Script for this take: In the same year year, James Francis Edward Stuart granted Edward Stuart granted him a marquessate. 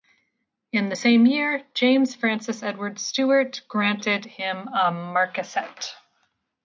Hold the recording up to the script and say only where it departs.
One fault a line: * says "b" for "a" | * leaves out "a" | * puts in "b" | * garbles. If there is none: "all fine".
* leaves out "year"
* leaves out "Edward Stuart granted"